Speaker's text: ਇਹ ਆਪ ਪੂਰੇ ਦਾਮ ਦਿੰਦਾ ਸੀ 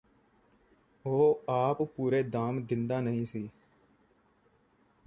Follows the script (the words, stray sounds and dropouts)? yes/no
no